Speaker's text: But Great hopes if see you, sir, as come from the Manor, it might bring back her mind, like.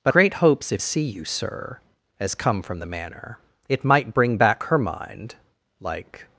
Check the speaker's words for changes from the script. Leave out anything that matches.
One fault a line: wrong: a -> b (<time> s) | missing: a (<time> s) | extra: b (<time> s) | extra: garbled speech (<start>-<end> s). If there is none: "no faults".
no faults